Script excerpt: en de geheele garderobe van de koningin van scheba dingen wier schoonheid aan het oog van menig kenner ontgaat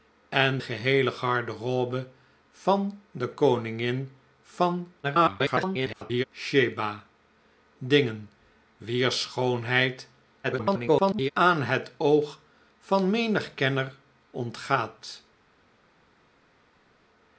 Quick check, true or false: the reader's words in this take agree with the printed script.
false